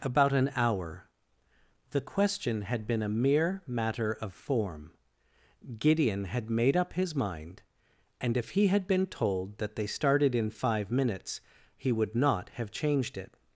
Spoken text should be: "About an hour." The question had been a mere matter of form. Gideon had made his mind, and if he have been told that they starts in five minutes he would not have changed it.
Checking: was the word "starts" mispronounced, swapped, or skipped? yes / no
yes